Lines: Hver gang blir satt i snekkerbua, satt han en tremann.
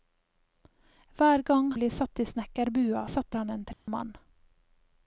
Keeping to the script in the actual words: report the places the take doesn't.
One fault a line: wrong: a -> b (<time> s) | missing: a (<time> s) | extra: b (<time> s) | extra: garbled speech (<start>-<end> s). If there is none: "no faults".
no faults